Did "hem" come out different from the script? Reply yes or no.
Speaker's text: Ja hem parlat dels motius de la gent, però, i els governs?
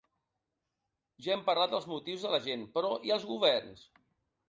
no